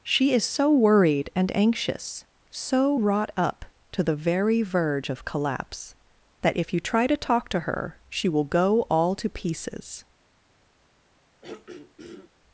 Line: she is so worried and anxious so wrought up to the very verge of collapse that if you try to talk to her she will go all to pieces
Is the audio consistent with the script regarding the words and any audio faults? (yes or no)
no